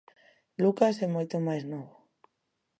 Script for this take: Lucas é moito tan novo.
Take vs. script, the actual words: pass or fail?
fail